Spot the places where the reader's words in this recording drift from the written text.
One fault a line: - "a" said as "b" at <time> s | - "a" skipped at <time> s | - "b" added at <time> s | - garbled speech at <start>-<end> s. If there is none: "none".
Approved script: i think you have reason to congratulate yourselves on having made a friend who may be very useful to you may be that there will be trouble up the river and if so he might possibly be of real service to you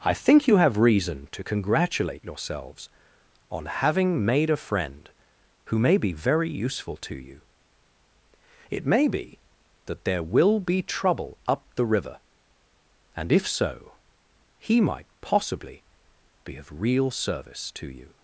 - "it" added at 8.7 s